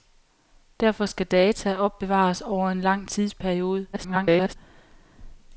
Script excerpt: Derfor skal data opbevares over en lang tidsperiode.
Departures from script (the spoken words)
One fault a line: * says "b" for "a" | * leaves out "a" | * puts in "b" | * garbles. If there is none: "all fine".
* garbles